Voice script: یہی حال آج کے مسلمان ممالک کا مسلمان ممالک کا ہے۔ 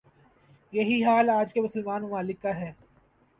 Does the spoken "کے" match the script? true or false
true